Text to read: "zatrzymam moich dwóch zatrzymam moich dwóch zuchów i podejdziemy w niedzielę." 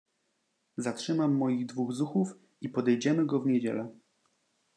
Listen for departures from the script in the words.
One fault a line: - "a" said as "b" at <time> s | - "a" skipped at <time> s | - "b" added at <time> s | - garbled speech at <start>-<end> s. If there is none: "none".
- "zatrzymam moich dwóch" skipped at 1.9 s
- "go" added at 3.2 s